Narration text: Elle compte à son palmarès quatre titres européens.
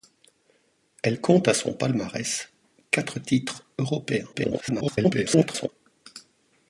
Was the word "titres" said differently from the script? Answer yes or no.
no